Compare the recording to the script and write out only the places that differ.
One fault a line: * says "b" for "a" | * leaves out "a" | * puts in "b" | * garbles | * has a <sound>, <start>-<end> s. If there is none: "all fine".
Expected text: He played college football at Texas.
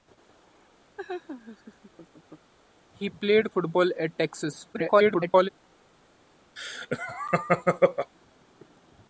* has a laugh, 1.0-2.5 s
* leaves out "college"
* garbles
* has a laugh, 6.6-8.1 s